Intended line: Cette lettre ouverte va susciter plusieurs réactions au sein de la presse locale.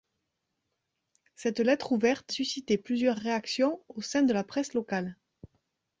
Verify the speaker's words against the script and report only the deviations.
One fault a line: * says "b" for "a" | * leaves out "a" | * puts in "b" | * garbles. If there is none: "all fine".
* leaves out "va"